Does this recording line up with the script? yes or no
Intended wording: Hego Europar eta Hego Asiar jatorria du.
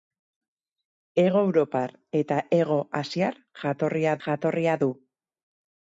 no